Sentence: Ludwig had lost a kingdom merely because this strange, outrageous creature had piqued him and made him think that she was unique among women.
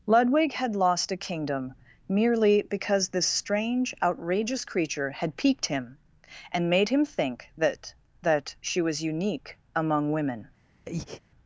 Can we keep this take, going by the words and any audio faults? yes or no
no